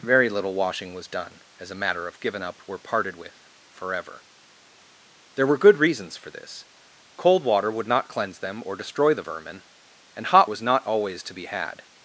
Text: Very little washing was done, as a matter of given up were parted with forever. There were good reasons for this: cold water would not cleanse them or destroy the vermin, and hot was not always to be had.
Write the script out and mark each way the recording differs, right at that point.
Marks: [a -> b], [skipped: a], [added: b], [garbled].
Very little washing was done, as a matter of given up were parted with forever. There were good reasons for this: cold water would not cleanse them or destroy the vermin, and hot was not always to be had.